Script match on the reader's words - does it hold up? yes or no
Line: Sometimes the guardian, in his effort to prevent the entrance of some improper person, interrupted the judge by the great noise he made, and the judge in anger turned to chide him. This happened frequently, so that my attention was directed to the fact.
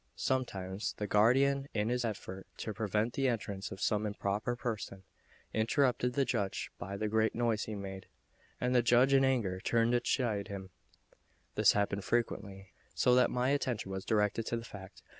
yes